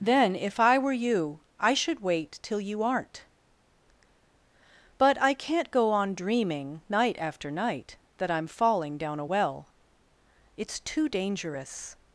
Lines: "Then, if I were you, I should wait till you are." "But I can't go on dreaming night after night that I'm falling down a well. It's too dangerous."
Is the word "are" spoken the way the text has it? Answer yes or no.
no